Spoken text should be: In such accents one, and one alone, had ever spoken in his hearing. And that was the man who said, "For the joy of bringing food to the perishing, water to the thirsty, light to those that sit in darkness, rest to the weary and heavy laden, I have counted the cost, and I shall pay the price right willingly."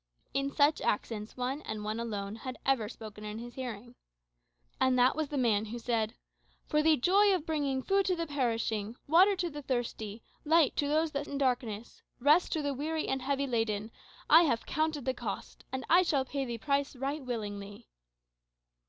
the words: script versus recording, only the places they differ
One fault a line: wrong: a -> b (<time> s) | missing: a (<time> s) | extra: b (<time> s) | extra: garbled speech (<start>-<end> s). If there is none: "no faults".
missing: sit (11.3 s)